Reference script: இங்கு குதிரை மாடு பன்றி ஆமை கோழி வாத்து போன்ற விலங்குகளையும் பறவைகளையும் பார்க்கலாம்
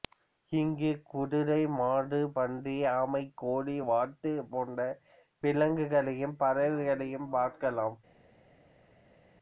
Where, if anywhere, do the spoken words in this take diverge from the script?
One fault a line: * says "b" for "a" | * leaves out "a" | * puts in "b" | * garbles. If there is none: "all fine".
all fine